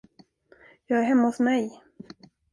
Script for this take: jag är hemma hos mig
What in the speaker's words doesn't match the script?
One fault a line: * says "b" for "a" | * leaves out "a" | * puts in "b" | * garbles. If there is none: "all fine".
all fine